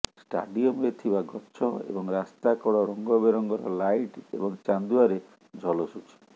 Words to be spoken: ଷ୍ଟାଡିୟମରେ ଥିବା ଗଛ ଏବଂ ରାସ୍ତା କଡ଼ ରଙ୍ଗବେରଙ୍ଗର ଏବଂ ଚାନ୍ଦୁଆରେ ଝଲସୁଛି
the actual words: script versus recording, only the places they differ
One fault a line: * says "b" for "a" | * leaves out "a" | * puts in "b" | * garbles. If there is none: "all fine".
* puts in "ଲାଇଟ୍"